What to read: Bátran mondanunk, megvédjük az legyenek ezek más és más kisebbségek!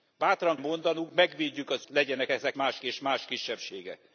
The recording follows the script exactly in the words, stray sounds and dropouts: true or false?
true